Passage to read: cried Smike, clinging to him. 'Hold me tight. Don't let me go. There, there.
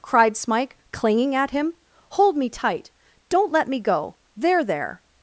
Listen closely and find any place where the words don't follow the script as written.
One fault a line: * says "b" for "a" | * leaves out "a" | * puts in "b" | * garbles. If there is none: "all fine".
* says "at" for "to"